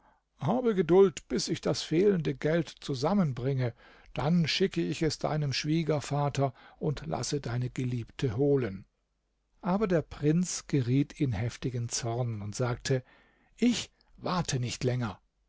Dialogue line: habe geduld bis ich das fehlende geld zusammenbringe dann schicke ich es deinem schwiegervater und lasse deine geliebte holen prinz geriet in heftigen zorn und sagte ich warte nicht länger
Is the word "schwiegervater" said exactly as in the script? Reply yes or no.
yes